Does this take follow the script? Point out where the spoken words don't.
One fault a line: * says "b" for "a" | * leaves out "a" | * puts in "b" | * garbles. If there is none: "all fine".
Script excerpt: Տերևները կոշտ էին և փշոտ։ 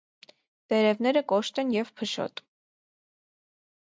* says "են" for "էին"